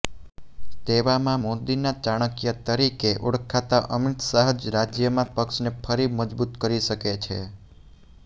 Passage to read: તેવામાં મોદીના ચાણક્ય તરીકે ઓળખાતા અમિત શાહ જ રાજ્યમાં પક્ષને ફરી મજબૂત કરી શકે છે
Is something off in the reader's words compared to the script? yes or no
no